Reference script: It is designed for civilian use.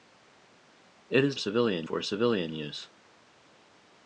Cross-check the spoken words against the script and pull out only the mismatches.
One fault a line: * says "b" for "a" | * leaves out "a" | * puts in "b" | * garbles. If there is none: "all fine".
* says "civilian" for "designed"